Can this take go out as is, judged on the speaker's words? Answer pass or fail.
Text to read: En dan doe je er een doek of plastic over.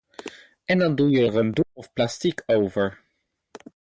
pass